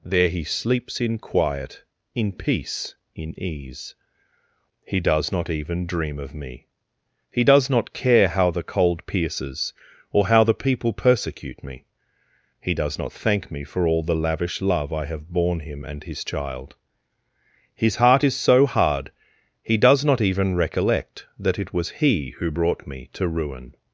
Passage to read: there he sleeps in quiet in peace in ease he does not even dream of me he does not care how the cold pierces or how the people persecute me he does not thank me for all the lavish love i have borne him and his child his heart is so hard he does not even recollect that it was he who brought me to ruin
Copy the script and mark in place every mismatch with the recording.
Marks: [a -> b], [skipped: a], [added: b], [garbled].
there he sleeps in quiet in peace in ease he does not even dream of me he does not care how the cold pierces or how the people persecute me he does not thank me for all the lavish love i have borne him and his child his heart is so hard he does not even recollect that it was he who brought me to ruin